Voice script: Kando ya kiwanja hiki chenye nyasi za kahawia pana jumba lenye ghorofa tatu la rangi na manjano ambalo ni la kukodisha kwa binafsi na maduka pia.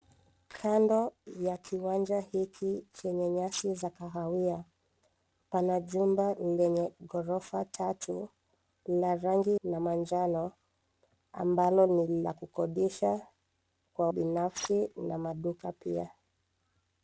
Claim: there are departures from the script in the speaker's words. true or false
false